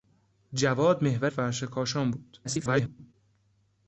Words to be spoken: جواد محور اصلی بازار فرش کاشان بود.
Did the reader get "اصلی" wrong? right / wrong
wrong